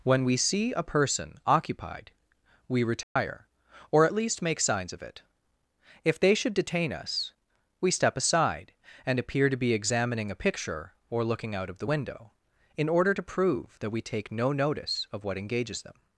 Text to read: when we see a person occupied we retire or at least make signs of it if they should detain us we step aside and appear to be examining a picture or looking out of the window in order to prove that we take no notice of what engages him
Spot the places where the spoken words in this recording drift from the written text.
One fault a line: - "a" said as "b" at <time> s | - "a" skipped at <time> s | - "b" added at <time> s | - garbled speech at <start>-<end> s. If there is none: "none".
- "him" said as "them" at 15.8 s